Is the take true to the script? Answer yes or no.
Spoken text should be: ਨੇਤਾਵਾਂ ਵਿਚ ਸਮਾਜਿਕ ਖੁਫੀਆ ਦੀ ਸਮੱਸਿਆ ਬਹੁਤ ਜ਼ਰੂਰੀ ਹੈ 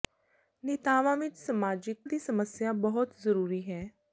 no